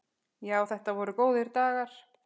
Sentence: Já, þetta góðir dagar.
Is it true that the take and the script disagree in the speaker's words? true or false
true